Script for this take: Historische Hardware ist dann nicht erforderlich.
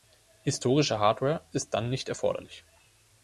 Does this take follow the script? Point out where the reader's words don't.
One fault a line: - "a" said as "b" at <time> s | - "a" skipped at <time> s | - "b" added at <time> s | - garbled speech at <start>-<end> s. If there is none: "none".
none